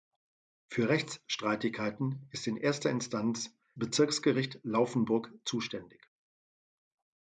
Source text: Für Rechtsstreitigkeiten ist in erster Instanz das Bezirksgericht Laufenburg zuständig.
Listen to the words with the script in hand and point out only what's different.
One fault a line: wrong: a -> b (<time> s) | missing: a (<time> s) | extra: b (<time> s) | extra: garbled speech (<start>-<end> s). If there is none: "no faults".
missing: das (3.5 s)